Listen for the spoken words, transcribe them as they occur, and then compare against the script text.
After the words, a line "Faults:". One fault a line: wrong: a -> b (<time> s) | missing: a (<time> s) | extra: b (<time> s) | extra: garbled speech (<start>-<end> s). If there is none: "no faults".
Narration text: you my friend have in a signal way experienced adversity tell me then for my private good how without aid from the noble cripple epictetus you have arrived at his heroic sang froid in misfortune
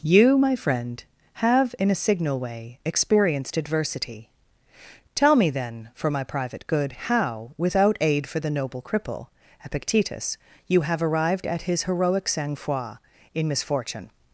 you my friend have in a signal way experienced adversity tell me then for my private good how without aid for the noble cripple epictetus you have arrived at his heroic sang froid in misfortune
Faults:
wrong: from -> for (8.2 s)